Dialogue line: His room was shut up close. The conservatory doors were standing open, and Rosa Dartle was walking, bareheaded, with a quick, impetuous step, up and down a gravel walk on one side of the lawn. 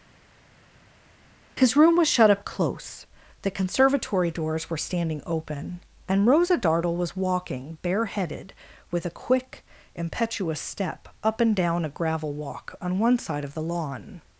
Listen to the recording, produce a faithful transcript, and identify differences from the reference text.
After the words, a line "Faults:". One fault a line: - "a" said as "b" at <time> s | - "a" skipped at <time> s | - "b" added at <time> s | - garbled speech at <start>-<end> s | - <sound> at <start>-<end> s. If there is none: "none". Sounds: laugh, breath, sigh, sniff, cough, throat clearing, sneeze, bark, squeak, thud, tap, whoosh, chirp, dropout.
His room was shut up close. The conservatory doors were standing open, and Rosa Dartle was walking, bareheaded, with a quick, impetuous step, up and down a gravel walk on one side of the lawn.
Faults:
none